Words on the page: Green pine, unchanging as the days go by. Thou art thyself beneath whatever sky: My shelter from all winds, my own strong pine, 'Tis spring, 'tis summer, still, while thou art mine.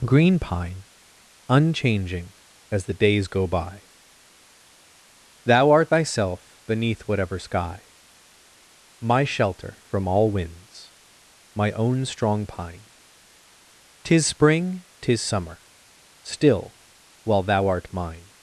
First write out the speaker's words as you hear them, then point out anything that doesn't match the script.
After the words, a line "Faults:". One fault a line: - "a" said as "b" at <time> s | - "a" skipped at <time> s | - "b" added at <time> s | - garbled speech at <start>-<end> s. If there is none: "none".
Green pine, unchanging as the days go by. Thou art thyself beneath whatever sky: My shelter from all winds, my own strong pine, 'Tis spring, 'tis summer, still, while thou art mine.
Faults:
none